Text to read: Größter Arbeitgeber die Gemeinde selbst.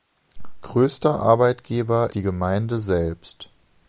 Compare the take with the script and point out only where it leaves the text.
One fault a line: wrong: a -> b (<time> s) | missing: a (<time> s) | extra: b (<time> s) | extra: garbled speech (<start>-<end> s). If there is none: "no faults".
no faults